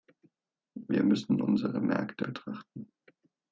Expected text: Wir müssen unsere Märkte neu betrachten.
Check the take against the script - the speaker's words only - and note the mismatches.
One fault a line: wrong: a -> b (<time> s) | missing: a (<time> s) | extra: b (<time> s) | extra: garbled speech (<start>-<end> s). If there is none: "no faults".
missing: neu (2.2 s)